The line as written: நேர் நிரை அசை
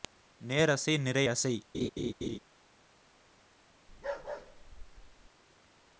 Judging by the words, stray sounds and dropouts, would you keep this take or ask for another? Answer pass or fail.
fail